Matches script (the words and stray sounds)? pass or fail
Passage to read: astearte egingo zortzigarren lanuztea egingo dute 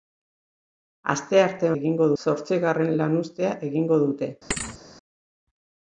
fail